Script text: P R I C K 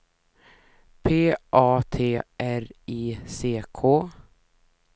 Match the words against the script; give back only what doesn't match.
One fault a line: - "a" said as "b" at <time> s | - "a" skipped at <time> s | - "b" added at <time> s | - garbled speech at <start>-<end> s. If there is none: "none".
- "A T" added at 1.5 s